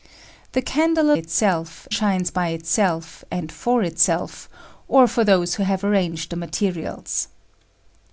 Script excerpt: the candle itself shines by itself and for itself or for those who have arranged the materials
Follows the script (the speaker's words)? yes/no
yes